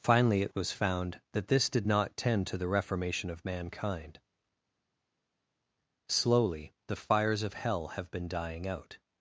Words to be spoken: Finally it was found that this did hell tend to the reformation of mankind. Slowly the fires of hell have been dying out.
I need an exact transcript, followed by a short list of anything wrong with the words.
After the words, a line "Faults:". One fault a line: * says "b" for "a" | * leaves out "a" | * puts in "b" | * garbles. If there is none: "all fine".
Finally it was found that this did not tend to the reformation of mankind. Slowly the fires of hell have been dying out.
Faults:
* says "not" for "hell"